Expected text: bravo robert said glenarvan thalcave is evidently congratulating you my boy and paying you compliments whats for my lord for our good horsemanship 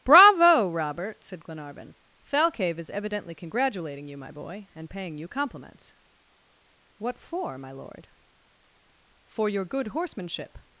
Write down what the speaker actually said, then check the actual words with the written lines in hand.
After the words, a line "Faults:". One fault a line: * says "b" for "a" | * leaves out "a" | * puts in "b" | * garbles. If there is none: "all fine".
bravo robert said glenarvan thalcave is evidently congratulating you my boy and paying you compliments what for my lord for your good horsemanship
Faults:
* says "what" for "whats"
* says "your" for "our"